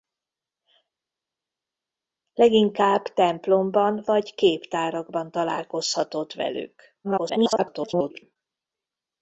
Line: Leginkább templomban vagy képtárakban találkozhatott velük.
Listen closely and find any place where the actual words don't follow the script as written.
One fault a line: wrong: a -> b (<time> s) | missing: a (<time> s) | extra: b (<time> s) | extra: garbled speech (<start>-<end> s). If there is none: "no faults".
extra: garbled speech (7.0-8.4 s)